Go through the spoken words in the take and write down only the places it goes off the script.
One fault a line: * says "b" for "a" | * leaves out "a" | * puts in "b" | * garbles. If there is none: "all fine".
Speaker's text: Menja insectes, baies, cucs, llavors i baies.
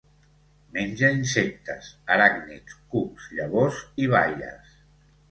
* says "aràcnids" for "baies"